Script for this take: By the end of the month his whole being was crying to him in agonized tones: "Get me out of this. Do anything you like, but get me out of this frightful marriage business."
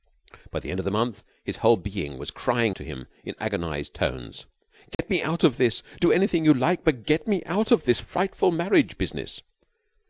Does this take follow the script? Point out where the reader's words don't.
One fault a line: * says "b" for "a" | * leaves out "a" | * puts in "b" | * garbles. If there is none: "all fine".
all fine